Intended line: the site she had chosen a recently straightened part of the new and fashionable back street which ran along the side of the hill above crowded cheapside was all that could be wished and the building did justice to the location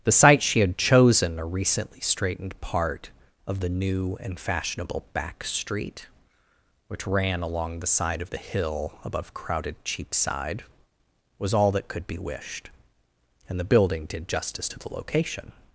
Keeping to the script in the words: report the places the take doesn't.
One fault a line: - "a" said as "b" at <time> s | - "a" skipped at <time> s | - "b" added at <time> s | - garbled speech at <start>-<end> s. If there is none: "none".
none